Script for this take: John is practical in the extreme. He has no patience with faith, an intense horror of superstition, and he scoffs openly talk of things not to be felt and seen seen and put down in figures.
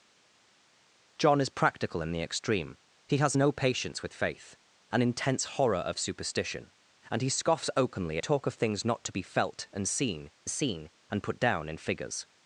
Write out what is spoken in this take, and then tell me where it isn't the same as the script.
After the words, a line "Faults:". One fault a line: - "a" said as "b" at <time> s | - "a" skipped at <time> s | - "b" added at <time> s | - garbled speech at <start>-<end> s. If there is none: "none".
John is practical in the extreme. He has no patience with faith, an intense horror of superstition, and he scoffs openly talk of things not to be felt and seen seen and put down in figures.
Faults:
none